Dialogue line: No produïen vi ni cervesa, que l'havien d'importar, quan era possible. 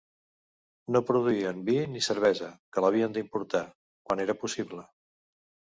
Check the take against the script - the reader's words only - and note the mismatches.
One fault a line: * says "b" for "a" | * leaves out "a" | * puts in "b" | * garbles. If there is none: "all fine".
all fine